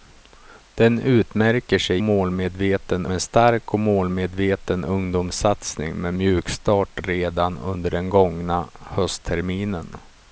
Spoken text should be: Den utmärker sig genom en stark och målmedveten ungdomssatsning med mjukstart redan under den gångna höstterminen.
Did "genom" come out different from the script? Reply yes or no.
yes